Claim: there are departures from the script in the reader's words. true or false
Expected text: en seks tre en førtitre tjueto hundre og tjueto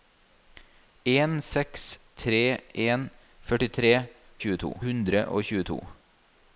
false